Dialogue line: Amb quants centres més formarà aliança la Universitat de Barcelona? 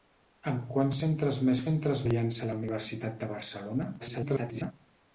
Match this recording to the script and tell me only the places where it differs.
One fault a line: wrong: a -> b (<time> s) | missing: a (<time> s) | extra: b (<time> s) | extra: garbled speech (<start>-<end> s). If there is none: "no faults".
wrong: formarà -> centres (1.7 s)
extra: garbled speech (4.0-4.7 s)